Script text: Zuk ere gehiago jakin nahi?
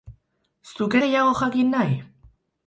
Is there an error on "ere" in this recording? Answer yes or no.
yes